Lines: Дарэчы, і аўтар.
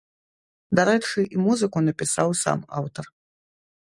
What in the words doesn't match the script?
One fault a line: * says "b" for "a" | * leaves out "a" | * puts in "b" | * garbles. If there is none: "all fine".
* puts in "музыку напісаў сам"